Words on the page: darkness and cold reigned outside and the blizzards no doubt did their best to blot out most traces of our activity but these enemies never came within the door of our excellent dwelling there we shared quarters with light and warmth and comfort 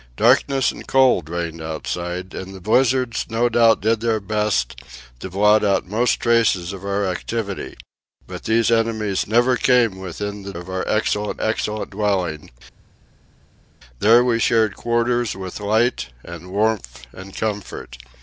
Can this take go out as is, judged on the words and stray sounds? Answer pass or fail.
fail